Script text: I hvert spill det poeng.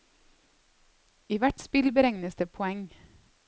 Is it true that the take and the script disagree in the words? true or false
true